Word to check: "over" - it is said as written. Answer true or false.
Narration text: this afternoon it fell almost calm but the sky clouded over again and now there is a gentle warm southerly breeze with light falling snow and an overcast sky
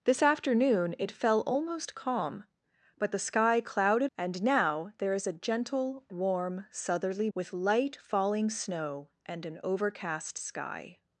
false